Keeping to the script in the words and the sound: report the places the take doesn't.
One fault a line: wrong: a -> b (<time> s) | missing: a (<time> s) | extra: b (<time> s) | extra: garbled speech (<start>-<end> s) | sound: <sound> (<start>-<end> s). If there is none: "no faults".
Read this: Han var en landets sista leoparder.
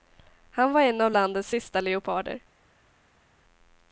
extra: av (1.0 s)